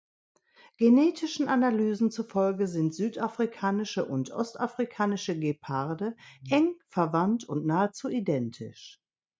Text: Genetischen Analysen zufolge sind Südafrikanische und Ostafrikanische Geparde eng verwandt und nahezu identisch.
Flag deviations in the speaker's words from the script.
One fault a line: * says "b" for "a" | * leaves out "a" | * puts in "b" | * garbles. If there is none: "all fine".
all fine